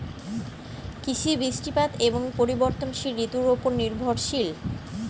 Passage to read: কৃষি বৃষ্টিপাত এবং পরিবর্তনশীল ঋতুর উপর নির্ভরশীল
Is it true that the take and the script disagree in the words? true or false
false